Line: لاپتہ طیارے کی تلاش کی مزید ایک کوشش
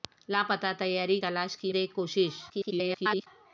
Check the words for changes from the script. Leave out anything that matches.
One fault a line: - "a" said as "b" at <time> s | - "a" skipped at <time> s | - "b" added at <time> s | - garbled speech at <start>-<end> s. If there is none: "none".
- "کی" skipped at 1.2 s
- "مزید" skipped at 1.7 s
- garbled speech at 2.5-3.3 s